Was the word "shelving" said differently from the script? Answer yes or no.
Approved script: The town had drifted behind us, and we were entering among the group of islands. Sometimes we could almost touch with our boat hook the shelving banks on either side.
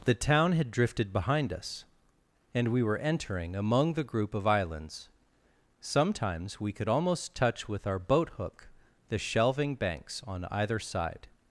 no